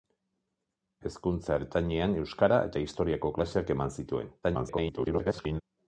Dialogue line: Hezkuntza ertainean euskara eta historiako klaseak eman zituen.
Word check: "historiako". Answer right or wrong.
right